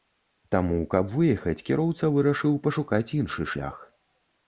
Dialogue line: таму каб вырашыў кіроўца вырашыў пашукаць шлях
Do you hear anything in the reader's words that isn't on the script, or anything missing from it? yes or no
yes